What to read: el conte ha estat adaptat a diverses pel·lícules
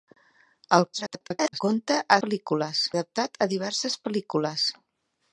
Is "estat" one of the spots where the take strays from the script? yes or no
yes